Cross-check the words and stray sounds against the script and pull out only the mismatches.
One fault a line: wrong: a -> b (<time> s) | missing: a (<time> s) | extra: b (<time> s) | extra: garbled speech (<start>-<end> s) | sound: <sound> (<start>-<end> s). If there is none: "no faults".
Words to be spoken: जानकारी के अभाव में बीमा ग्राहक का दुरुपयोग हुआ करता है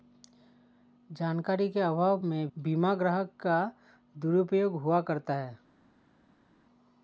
no faults